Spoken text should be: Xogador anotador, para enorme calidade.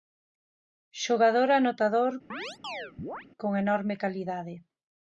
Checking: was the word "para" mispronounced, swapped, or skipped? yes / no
yes